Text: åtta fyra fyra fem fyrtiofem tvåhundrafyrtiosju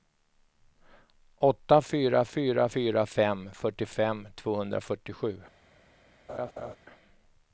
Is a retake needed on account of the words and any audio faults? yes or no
yes